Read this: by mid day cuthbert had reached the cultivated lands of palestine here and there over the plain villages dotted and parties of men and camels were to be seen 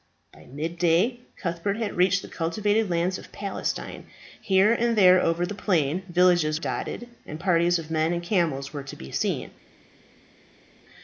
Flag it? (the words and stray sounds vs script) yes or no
no